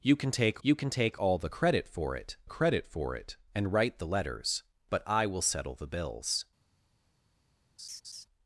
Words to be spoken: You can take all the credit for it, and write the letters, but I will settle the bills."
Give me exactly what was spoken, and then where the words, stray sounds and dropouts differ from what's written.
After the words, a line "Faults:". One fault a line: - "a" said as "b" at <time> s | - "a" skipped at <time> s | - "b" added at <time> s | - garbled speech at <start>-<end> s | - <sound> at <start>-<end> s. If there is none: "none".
You can take you can take all the credit for it credit for it, and write the letters, but I will settle the bills."
Faults:
- "you can take" added at 0.6 s
- "credit for it" added at 2.5 s
- laugh at 7.8-8.3 s